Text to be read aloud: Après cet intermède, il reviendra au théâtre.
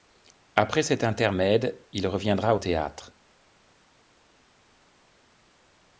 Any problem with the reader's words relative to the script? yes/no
no